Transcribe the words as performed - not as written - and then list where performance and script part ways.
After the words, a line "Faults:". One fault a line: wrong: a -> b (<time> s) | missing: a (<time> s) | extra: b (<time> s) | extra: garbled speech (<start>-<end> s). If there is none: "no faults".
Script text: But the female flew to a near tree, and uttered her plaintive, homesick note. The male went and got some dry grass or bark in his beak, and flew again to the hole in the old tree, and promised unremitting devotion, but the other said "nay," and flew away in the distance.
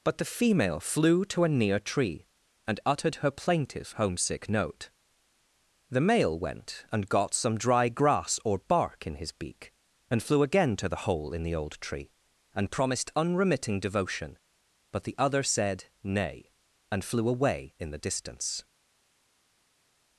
But the female flew to a near tree, and uttered her plaintive, homesick note. The male went and got some dry grass or bark in his beak, and flew again to the hole in the old tree, and promised unremitting devotion, but the other said "nay," and flew away in the distance.
Faults:
no faults